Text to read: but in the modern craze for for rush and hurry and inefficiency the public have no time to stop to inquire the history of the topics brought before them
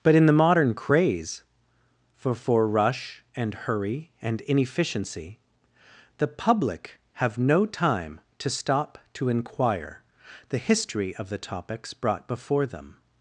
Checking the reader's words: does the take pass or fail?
pass